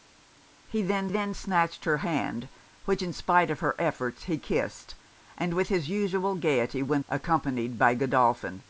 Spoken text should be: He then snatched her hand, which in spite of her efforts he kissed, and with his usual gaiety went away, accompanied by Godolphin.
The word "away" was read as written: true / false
false